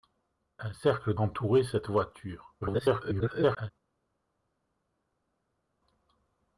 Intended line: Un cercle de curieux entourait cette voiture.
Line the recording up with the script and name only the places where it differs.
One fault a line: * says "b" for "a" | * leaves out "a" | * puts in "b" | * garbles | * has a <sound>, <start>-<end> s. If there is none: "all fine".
* leaves out "de curieux"
* garbles